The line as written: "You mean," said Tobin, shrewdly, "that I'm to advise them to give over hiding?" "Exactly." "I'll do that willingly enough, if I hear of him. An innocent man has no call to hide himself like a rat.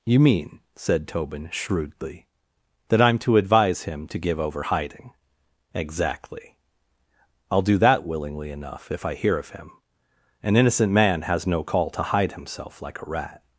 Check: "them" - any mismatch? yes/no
yes